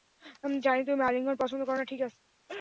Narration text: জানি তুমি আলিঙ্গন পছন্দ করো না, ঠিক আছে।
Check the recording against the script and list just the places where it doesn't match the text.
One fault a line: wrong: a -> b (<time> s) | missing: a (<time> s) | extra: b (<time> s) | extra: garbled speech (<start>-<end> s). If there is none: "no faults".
no faults